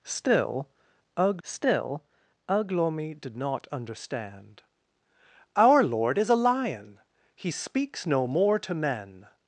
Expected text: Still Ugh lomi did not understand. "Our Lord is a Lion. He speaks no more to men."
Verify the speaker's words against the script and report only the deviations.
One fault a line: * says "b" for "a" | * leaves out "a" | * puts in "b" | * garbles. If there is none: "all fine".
* puts in "still Ugh"